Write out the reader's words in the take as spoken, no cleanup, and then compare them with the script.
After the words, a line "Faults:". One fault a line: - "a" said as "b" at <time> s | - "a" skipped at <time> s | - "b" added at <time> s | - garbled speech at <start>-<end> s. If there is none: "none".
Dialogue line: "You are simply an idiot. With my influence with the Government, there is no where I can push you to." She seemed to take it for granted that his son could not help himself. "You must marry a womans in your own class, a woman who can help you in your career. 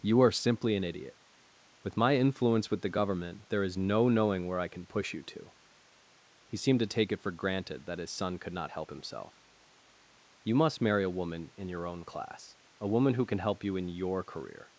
"You are simply an idiot. With my influence with the Government, there is no knowing where I can push you to." He seemed to take it for granted that his son could not help himself. "You must marry a woman in your own class, a woman who can help you in your career.
Faults:
- "knowing" added at 4.1 s
- "She" said as "He" at 6.5 s
- "womans" said as "woman" at 11.2 s